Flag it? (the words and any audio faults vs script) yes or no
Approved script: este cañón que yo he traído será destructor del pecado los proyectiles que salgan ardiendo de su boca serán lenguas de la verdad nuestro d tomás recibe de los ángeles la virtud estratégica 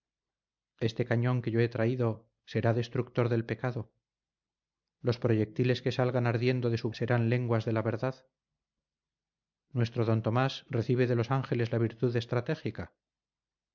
yes